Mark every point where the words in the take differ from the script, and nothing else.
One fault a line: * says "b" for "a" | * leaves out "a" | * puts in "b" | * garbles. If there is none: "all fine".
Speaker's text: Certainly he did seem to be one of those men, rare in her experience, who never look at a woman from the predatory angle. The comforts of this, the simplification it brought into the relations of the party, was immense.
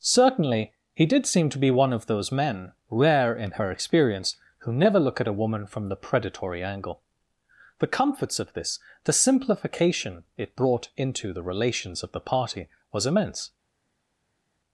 all fine